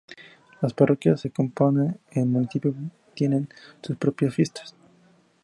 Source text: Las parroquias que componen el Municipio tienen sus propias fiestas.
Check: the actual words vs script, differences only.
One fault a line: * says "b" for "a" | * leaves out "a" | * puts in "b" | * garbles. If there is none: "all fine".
all fine